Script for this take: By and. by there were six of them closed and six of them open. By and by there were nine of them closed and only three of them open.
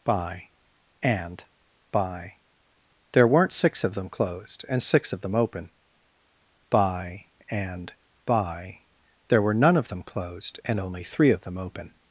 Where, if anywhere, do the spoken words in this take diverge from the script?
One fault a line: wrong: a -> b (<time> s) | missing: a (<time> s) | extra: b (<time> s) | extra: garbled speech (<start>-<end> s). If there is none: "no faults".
wrong: were -> weren't (3.3 s)
wrong: nine -> none (9.5 s)